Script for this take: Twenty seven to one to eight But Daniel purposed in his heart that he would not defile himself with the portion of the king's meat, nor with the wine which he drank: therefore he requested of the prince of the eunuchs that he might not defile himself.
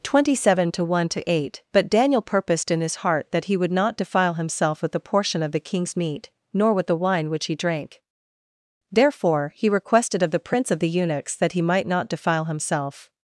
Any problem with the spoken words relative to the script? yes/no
no